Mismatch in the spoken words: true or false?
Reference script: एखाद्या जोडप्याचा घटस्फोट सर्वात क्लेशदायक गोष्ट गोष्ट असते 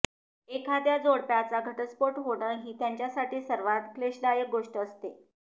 true